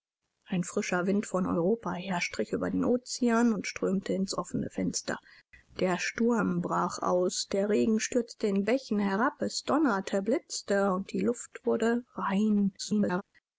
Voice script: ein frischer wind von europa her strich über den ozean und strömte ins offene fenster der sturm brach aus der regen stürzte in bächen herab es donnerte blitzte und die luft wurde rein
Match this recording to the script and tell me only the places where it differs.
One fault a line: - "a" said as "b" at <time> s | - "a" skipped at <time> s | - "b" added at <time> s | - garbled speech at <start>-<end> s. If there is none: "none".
- garbled speech at 12.8-13.2 s